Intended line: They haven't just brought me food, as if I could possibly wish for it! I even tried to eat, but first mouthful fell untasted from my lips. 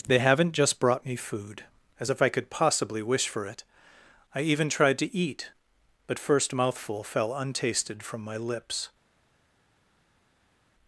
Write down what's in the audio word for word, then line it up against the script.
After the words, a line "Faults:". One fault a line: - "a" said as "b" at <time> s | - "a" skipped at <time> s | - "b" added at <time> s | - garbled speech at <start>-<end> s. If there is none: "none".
They haven't just brought me food, as if I could possibly wish for it! I even tried to eat, but first mouthful fell untasted from my lips.
Faults:
none